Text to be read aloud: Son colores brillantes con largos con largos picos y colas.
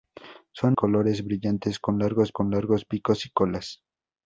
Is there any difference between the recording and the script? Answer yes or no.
no